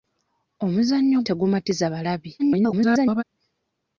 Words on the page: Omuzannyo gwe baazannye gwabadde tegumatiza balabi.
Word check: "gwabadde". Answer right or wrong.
wrong